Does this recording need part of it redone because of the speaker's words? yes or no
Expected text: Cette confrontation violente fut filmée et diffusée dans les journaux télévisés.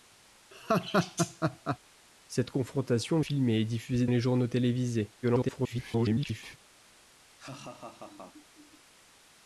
yes